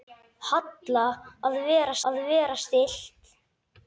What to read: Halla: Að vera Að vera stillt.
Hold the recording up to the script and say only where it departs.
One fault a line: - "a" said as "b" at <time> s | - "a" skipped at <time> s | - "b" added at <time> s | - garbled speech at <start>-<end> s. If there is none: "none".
none